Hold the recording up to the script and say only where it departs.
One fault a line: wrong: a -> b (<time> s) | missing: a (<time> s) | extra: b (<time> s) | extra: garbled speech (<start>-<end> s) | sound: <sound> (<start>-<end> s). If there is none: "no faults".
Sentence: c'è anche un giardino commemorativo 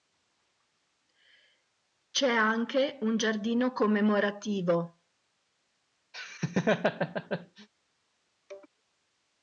sound: laugh (6.1-7.7 s)